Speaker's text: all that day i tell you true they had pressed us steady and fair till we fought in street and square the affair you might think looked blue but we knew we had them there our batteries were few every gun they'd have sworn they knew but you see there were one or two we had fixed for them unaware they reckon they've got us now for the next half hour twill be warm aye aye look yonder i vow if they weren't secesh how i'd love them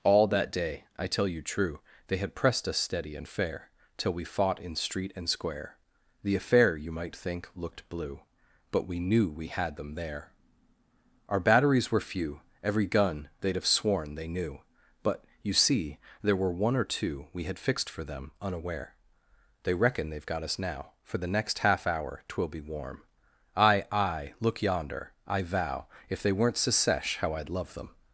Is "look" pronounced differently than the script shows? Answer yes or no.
no